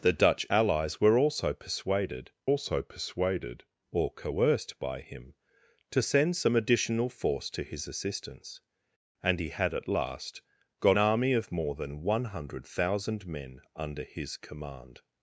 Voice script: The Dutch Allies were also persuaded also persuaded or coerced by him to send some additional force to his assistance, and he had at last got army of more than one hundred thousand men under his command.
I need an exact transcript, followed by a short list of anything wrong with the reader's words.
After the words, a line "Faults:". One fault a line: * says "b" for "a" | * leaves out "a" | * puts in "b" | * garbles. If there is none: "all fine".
The Dutch Allies were also persuaded also persuaded or coerced by him to send some additional force to his assistance, and he had at last got army of more than one hundred thousand men under his command.
Faults:
all fine